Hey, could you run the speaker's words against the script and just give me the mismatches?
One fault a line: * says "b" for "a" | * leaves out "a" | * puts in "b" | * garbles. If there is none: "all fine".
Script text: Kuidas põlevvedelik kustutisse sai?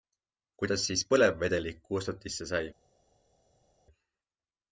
* puts in "siis"